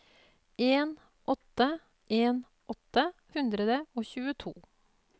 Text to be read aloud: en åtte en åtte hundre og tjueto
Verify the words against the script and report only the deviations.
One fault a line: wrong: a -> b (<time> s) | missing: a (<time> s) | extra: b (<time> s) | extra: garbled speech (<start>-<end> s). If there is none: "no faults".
no faults